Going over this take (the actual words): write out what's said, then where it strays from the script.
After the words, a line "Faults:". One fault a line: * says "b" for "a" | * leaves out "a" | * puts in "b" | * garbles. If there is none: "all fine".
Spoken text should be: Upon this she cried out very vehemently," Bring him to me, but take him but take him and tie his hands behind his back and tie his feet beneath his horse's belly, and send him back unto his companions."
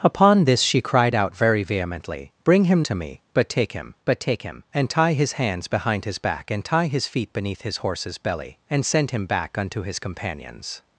Upon this she cried out very vehemently," Bring him to me, but take him but take him and tie his hands behind his back and tie his feet beneath his horse's belly, and send him back unto his companions."
Faults:
all fine